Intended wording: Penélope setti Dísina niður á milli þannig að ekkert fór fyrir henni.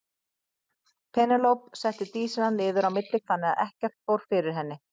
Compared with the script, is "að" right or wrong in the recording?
right